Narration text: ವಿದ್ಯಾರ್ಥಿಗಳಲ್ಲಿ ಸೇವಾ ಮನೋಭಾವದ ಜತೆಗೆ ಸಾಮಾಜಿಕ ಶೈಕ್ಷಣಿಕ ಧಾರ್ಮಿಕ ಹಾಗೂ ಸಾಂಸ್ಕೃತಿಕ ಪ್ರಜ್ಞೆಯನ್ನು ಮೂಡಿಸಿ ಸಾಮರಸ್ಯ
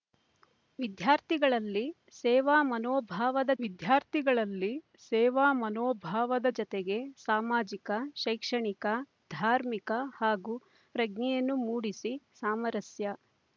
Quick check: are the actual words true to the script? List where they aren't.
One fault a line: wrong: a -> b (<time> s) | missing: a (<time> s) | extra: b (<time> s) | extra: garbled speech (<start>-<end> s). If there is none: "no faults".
extra: ವಿದ್ಯಾರ್ಥಿಗಳಲ್ಲಿ ಸೇವಾ ಮನೋಭಾವದ (3.6 s)
missing: ಸಾಂಸ್ಕೃತಿಕ (10.6 s)